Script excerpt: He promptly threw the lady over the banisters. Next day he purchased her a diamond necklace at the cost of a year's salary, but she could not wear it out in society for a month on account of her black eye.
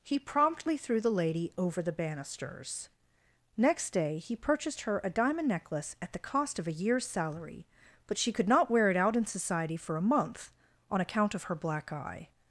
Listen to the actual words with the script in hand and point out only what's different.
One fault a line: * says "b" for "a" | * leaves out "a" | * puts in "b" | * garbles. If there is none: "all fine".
all fine